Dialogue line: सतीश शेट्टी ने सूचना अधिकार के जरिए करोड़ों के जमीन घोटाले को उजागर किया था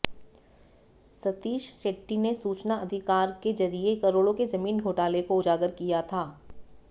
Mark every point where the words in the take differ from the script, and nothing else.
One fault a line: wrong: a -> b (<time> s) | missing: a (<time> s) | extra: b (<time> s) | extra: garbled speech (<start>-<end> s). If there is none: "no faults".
no faults